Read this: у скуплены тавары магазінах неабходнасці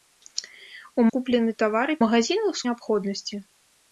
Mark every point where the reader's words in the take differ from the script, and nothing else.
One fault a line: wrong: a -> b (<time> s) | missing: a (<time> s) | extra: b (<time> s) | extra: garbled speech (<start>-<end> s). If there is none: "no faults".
no faults